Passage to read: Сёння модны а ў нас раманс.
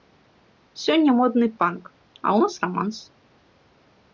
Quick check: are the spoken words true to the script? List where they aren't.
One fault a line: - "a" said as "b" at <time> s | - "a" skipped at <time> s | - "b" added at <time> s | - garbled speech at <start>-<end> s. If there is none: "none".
- "панк" added at 1.6 s